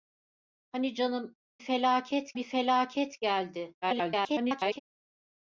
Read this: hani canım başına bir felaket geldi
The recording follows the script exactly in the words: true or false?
false